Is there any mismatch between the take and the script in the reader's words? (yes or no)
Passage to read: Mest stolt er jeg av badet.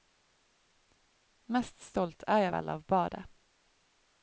yes